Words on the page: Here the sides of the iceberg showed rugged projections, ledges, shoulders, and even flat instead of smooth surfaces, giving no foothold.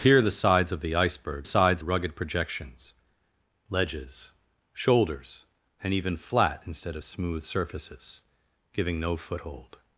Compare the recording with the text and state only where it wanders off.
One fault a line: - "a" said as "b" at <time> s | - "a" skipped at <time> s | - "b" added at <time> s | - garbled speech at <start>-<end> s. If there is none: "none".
- "showed" said as "sides" at 1.4 s